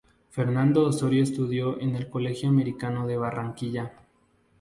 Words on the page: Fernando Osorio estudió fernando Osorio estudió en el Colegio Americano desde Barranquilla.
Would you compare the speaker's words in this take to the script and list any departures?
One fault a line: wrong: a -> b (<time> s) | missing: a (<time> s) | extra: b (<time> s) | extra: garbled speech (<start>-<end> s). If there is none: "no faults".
missing: fernando Osorio estudió (1.8 s)
wrong: desde -> de (3.0 s)